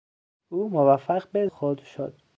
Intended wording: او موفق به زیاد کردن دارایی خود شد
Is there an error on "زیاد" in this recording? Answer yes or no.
yes